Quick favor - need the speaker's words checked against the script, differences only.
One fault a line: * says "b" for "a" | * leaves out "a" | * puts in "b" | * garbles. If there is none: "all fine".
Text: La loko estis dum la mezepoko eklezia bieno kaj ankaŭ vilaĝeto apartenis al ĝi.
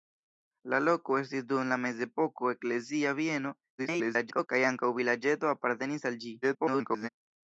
* garbles
* garbles